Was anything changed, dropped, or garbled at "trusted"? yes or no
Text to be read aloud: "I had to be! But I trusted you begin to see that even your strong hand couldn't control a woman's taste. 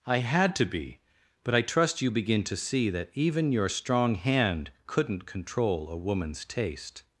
yes